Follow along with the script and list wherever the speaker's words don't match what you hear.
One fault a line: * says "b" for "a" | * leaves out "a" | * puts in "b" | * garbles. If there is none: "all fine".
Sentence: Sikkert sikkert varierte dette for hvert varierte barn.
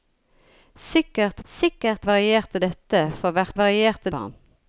all fine